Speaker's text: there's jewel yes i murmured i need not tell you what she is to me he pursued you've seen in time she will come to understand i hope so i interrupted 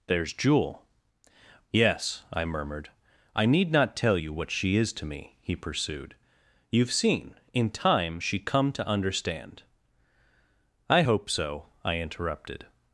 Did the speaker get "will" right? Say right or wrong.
wrong